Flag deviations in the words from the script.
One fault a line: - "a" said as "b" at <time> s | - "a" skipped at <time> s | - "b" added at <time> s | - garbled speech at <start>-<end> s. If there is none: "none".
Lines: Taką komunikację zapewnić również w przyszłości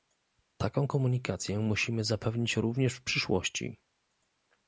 - "musimy" added at 1.6 s